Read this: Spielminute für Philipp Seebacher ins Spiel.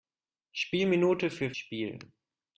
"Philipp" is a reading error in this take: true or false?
true